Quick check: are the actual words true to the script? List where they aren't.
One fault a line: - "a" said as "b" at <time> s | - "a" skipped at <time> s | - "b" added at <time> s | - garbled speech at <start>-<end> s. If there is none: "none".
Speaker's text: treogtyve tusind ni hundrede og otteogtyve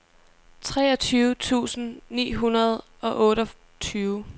none